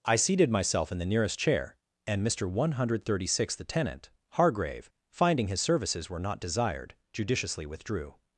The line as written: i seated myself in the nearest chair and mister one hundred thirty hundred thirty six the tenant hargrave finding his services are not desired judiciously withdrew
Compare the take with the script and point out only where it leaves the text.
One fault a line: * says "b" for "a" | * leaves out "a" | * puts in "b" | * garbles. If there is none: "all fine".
* leaves out "hundred thirty"
* says "were" for "are"